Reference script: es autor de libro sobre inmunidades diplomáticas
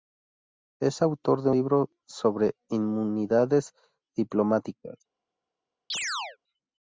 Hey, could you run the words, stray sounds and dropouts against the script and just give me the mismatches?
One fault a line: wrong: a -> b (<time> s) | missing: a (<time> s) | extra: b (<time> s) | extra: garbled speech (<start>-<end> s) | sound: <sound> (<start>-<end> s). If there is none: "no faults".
sound: chirp (5.9-6.4 s)